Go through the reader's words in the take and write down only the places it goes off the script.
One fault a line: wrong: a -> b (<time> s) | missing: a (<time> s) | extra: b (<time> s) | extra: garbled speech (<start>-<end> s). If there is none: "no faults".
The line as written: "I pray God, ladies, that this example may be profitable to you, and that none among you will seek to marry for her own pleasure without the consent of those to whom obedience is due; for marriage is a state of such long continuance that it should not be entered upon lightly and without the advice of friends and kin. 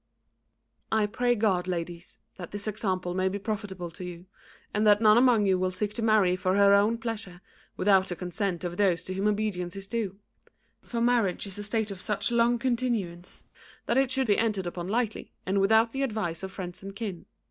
missing: not (14.3 s)